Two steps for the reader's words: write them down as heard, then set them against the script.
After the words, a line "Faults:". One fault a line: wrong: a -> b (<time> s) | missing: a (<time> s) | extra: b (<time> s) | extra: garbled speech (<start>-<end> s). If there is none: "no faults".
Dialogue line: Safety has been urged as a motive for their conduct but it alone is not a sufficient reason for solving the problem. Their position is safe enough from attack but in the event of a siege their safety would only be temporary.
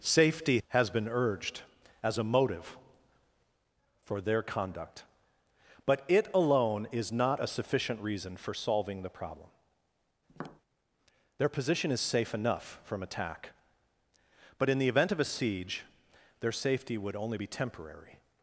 Safety has been urged as a motive for their conduct but it alone is not a sufficient reason for solving the problem. Their position is safe enough from attack but in the event of a siege their safety would only be temporary.
Faults:
no faults